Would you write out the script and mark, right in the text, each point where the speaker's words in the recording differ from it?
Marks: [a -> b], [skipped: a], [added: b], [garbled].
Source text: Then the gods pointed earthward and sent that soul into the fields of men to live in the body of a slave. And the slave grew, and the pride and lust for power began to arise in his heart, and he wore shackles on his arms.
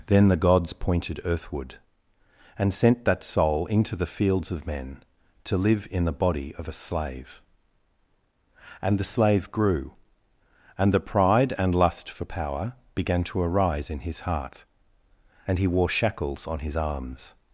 Then the gods pointed earthward and sent that soul into the fields of men to live in the body of a slave. And the slave grew, and the pride and lust for power began to arise in his heart, and he wore shackles on his arms.